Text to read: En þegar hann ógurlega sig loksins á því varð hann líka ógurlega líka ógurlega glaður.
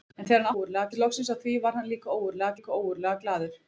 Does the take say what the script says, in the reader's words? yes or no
yes